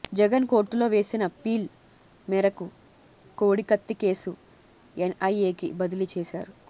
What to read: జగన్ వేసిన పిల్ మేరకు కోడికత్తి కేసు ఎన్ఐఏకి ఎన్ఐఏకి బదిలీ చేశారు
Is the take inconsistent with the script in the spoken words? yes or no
yes